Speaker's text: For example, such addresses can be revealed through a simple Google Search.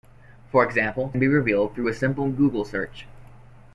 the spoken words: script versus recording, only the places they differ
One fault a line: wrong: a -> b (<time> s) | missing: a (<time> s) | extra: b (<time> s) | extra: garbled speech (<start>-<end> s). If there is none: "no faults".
missing: such addresses can (1.1 s)